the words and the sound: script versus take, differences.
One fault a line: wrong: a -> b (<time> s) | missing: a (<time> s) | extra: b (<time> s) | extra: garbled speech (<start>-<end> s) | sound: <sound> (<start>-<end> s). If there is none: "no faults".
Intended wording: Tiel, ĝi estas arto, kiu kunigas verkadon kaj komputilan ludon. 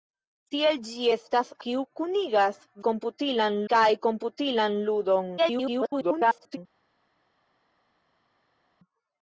missing: arto (1.5 s)
wrong: verkadon -> komputilan (2.9 s)
extra: garbled speech (5.4-6.6 s)